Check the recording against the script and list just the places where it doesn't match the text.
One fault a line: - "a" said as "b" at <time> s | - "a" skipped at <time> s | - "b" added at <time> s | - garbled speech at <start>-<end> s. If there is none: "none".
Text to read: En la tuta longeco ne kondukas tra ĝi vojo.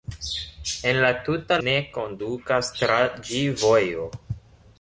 - "longeco" skipped at 1.6 s